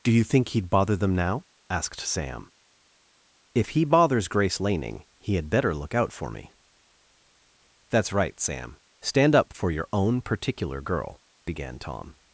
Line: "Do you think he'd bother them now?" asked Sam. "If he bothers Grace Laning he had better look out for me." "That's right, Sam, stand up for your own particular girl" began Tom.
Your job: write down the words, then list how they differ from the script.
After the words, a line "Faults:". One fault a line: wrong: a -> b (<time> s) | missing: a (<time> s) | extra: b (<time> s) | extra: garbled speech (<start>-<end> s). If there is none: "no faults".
"Do you think he'd bother them now?" asked Sam. "If he bothers Grace Laning he had better look out for me." "That's right, Sam, stand up for your own particular girl" began Tom.
Faults:
no faults